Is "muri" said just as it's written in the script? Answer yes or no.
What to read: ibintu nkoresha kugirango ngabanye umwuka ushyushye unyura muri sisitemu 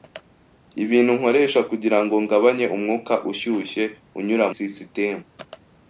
no